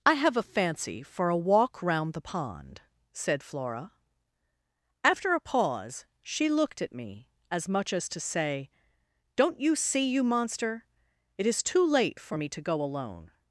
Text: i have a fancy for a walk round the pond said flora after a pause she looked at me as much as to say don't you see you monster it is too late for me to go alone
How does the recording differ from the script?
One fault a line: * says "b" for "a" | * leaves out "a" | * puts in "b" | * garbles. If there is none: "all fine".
all fine